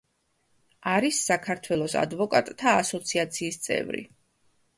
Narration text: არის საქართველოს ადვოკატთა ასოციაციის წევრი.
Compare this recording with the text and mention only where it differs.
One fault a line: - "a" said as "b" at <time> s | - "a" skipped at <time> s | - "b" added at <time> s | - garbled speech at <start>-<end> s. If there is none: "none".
none